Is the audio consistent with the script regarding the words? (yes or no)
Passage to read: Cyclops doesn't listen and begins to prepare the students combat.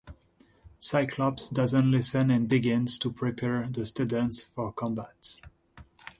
no